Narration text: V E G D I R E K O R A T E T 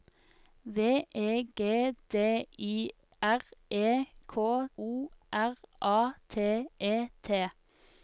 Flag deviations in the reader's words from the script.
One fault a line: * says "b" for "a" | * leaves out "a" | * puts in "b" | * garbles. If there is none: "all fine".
all fine